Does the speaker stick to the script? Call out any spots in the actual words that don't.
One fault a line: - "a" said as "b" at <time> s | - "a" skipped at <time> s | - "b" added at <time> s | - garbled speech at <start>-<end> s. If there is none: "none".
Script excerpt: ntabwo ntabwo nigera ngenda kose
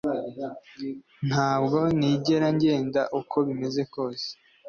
- "ntabwo" skipped at 1.8 s
- "uko bimeze" added at 3.2 s